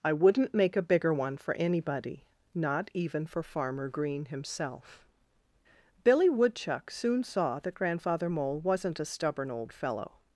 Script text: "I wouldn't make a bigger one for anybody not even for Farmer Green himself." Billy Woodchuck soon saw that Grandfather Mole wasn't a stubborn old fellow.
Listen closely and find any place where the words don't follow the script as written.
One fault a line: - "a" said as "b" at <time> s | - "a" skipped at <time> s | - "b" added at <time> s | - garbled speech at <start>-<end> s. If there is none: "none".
none